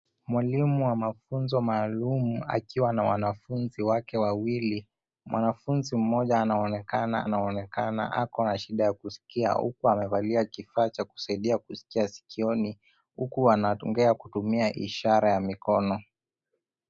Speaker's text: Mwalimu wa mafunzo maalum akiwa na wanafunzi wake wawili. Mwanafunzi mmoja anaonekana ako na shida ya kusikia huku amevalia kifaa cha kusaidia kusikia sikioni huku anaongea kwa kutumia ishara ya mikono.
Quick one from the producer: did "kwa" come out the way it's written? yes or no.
no